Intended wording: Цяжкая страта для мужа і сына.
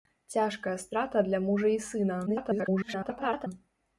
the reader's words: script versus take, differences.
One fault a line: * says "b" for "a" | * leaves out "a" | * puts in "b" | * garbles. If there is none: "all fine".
* garbles